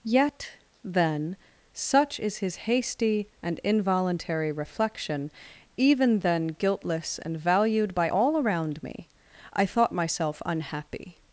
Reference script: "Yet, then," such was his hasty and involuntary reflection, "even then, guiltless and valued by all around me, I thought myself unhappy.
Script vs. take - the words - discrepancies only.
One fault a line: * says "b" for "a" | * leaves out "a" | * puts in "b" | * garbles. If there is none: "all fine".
* says "is" for "was"